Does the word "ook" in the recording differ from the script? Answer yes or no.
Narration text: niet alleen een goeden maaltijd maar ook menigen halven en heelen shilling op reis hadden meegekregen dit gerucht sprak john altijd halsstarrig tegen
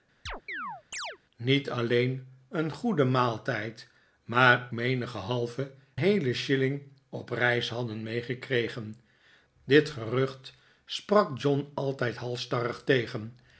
yes